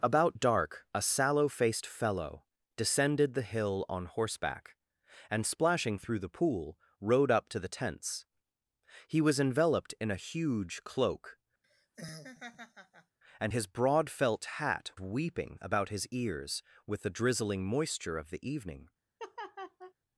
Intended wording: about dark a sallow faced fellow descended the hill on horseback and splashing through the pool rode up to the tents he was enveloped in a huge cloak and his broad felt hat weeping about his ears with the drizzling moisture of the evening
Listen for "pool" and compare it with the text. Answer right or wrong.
right